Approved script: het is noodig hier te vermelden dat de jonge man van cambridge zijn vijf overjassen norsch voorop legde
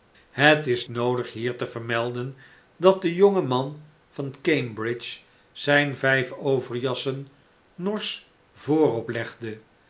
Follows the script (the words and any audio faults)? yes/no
yes